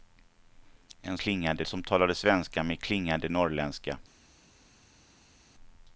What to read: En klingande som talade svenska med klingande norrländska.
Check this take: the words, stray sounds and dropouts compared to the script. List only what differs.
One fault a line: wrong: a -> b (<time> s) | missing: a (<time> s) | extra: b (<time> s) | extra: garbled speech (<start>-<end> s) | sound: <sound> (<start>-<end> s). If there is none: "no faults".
no faults